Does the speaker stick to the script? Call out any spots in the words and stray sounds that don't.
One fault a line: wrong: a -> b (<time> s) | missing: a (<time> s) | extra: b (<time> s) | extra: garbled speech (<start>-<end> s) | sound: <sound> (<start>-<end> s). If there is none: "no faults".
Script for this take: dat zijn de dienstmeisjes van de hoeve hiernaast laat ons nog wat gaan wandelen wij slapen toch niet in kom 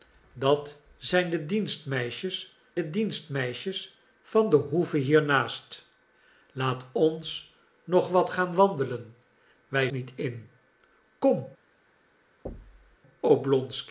extra: de dienstmeisjes (2.7 s)
missing: slapen toch (9.9 s)
sound: thud (12.5-13.0 s)